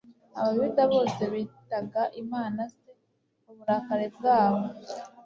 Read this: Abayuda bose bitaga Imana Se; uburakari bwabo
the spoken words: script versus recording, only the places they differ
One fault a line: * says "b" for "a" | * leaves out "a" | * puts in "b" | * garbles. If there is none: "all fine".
all fine